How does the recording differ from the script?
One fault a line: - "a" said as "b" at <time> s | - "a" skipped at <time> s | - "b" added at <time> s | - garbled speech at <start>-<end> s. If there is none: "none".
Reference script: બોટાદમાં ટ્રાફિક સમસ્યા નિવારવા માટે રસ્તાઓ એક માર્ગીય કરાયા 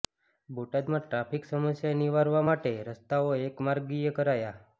none